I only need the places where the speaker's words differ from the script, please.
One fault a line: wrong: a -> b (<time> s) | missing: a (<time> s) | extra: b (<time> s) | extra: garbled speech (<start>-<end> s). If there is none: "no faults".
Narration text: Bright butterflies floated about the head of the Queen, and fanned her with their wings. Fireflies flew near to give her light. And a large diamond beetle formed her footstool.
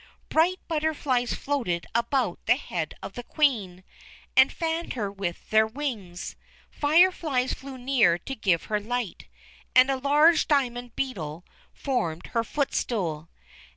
no faults